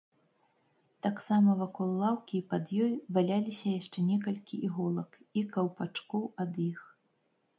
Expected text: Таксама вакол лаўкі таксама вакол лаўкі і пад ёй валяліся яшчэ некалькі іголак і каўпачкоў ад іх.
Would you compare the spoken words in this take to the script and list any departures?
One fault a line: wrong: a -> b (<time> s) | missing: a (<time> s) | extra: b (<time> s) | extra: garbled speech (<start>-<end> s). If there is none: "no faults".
missing: таксама вакол лаўкі (2.3 s)